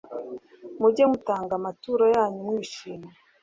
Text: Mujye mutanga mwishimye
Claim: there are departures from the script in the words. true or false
true